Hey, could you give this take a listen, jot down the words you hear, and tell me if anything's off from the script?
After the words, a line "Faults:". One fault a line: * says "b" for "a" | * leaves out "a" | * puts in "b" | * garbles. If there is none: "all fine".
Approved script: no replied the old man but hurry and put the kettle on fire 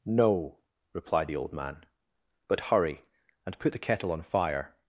no replied the old man but hurry and put the kettle on fire
Faults:
all fine